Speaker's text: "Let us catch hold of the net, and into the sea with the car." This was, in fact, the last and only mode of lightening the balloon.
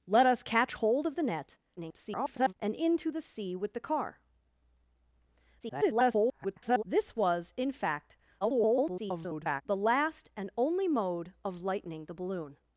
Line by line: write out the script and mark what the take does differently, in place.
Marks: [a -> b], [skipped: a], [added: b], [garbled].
"Let us catch hold of the net, [garbled] and into the sea with the car." [garbled] This was, in fact, [garbled] the last and only mode of lightening the balloon.